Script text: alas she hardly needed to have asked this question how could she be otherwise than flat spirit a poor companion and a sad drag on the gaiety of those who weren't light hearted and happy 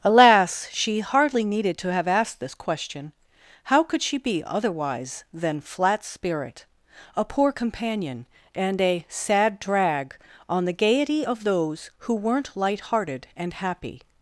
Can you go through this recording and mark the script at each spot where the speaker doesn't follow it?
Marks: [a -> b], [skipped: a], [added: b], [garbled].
alas she hardly needed to have asked this question how could she be otherwise than flat spirit a poor companion and a sad drag on the gaiety of those who weren't light hearted and happy